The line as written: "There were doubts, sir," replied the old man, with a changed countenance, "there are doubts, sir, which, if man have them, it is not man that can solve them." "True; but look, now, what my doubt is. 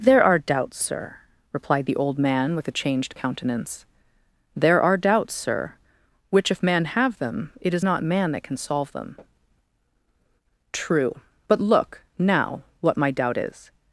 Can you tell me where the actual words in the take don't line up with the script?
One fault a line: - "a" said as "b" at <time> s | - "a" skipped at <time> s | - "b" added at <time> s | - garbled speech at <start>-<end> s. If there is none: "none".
- "were" said as "are" at 0.2 s